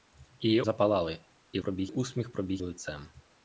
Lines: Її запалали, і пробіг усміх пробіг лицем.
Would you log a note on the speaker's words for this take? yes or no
no